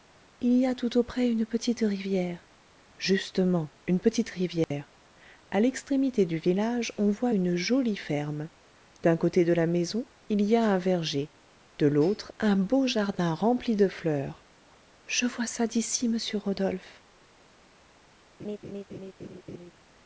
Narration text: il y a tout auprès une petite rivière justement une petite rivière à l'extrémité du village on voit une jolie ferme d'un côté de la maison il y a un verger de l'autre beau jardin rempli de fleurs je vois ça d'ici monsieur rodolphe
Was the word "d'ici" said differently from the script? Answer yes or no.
no